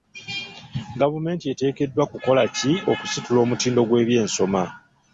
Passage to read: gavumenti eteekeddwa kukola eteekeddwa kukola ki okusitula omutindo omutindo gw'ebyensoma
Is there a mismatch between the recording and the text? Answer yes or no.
yes